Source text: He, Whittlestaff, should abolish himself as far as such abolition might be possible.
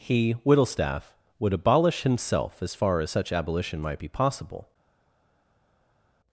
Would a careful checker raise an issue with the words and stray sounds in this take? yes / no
yes